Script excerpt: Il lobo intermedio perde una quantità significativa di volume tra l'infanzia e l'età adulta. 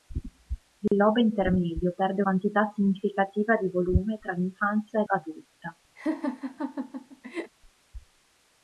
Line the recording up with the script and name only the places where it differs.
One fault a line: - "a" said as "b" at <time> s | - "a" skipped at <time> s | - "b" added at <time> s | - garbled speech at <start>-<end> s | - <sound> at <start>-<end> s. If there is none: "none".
- dropout at 0.9-0.9 s
- "una" skipped at 2.2 s
- "l'età" skipped at 5.1 s
- laugh at 6.0-7.5 s